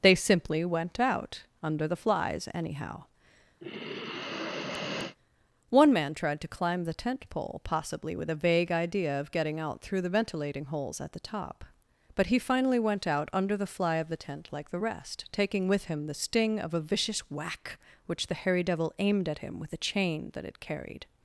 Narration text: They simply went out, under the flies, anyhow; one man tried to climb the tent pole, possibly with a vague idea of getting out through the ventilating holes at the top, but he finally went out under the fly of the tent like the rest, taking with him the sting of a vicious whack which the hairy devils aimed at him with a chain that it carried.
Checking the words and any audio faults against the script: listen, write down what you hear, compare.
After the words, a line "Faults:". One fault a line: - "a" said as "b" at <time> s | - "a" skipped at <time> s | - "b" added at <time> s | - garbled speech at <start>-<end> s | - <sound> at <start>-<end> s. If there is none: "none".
They simply went out, under the flies, anyhow; one man tried to climb the tent pole, possibly with a vague idea of getting out through the ventilating holes at the top, but he finally went out under the fly of the tent like the rest, taking with him the sting of a vicious whack which the hairy devil aimed at him with a chain that it carried.
Faults:
- sigh at 3.6-5.2 s
- "devils" said as "devil" at 18.6 s